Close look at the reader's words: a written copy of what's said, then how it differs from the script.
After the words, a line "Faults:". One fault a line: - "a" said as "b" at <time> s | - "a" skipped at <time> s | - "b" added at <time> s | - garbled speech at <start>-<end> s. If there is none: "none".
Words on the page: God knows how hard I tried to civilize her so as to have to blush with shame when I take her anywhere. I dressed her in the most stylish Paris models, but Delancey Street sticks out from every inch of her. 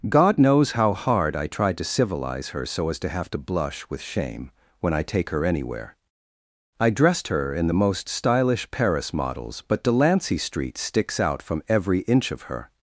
God knows how hard I tried to civilize her so as to have to blush with shame when I take her anywhere. I dressed her in the most stylish Paris models, but Delancey Street sticks out from every inch of her.
Faults:
none